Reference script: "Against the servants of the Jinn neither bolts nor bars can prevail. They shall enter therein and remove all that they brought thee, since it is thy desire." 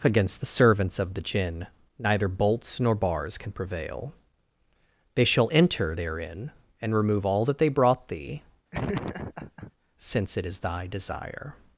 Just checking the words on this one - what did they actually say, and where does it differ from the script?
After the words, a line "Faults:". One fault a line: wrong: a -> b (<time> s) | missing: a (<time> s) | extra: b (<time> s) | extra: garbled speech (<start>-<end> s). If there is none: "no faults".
"Against the servants of the Jinn neither bolts nor bars can prevail. They shall enter therein and remove all that they brought thee, since it is thy desire."
Faults:
no faults